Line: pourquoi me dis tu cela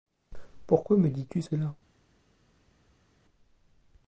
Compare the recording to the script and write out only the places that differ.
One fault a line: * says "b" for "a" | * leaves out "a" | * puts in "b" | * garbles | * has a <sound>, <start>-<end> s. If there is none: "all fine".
all fine